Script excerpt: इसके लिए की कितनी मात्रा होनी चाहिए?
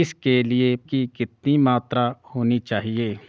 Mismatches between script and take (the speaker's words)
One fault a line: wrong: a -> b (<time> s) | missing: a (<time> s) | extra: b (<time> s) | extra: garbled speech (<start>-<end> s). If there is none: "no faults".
no faults